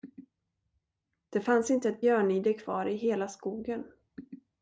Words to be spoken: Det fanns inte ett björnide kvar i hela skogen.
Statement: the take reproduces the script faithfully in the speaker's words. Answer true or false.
true